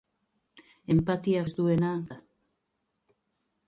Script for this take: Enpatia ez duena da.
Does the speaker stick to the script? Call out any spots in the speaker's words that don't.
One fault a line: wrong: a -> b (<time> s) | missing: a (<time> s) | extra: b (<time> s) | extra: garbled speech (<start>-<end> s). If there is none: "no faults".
no faults